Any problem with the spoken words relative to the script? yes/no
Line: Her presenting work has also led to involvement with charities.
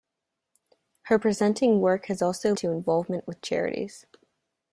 yes